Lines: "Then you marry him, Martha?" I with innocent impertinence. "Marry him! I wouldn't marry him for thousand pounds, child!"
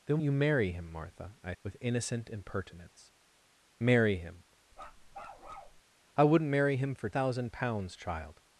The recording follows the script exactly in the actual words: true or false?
true